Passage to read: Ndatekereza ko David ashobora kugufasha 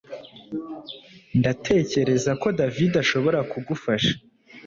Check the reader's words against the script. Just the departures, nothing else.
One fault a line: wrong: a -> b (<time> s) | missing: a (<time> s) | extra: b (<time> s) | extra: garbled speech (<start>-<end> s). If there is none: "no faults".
no faults